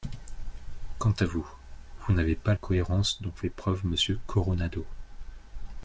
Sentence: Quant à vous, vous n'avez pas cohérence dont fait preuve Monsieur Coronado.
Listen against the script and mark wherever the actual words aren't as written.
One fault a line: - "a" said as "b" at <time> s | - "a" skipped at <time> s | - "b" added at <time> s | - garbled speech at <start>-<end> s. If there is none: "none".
none